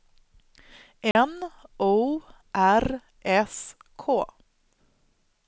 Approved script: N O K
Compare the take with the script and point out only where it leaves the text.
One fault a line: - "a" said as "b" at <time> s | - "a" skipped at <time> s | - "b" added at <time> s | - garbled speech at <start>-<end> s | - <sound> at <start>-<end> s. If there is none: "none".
- dropout at 1.1-1.2 s
- "R S" added at 2.5 s